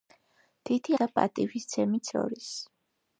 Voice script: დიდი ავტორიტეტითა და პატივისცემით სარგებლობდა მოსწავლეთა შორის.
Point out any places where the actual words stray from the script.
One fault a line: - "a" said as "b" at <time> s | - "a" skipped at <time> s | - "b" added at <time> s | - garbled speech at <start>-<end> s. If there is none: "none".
- "ავტორიტეტითა" skipped at 0.9 s
- "სარგებლობდა მოსწავლეთა" skipped at 2.1 s